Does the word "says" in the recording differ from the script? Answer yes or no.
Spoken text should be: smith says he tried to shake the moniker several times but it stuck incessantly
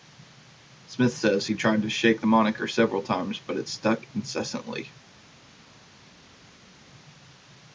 no